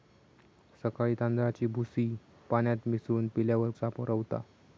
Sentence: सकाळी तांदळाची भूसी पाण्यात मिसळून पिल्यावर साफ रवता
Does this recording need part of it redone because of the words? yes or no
no